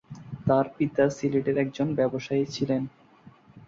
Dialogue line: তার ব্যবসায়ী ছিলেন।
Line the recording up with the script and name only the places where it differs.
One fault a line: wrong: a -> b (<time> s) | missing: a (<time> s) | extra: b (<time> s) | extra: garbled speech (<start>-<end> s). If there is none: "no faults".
extra: পিতা সিলেটের একজন (0.8 s)